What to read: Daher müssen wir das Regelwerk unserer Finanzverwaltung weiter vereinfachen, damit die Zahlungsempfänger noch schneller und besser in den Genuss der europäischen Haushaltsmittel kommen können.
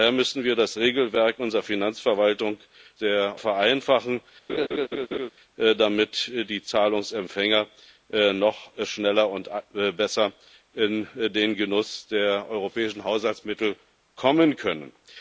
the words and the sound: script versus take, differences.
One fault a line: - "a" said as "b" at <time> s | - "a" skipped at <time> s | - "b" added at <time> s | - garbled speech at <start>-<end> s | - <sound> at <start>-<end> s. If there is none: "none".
- "weiter" said as "der" at 3.0 s
- laugh at 4.5-5.3 s